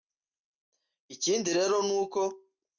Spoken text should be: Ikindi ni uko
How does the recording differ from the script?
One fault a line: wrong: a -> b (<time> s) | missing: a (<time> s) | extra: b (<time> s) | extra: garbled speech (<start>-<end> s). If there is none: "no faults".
extra: rero (1.6 s)